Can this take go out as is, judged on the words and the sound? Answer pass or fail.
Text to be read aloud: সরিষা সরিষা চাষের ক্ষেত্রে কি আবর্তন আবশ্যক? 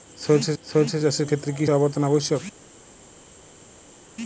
pass